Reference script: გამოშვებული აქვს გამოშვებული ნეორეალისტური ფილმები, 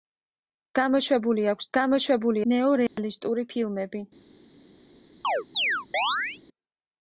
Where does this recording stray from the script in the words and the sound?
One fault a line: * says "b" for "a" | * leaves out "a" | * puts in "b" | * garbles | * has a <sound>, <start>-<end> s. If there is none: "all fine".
* has a dropout, 2.9-3.0 s
* has a chirp, 5.2-6.4 s